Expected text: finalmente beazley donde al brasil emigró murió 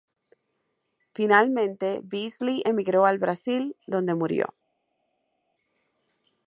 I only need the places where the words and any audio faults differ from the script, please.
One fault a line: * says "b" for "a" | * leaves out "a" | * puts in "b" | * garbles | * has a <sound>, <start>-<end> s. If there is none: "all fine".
* says "emigró" for "donde"
* says "donde" for "emigró"